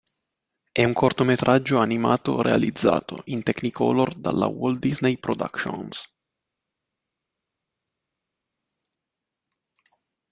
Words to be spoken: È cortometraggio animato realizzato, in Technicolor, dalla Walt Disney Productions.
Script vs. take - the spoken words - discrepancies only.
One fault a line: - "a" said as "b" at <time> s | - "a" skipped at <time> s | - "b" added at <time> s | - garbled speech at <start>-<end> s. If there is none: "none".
- "un" added at 0.8 s